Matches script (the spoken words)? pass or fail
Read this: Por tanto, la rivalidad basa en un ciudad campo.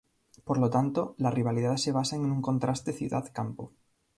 fail